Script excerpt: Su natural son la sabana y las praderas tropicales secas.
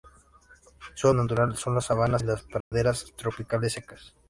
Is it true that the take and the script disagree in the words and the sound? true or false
true